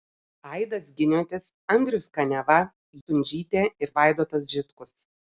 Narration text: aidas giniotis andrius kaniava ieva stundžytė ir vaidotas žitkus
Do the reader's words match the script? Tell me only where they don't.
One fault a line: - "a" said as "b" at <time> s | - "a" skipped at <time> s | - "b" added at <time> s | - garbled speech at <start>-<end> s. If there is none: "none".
- "ieva" skipped at 2.6 s